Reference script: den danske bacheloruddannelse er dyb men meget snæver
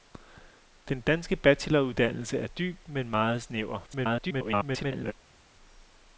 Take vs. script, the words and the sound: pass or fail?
fail